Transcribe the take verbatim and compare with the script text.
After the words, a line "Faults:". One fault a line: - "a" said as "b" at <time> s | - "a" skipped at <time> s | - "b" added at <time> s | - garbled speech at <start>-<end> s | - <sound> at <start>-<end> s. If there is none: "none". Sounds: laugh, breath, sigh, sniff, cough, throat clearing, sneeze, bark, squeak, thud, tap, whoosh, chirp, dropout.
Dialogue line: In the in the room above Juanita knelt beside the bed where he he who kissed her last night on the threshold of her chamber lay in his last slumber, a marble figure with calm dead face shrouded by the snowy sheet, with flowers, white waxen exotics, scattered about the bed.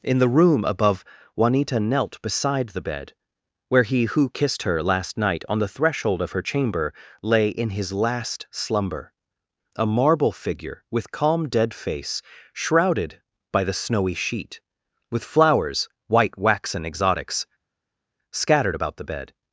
In the room above Juanita knelt beside the bed where he who kissed her last night on the threshold of her chamber lay in his last slumber, a marble figure with calm dead face shrouded by the snowy sheet, with flowers, white waxen exotics, scattered about the bed.
Faults:
- "in the" skipped at 0.3 s
- "he" skipped at 4.0 s